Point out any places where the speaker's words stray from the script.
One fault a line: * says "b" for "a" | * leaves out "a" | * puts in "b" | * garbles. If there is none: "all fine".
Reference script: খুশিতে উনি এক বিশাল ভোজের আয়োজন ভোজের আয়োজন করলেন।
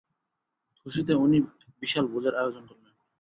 * leaves out "ভোজের আয়োজন"